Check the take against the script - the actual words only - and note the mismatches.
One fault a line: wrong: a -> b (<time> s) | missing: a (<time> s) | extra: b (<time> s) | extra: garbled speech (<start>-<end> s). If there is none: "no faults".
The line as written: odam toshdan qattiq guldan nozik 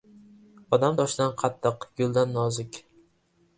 no faults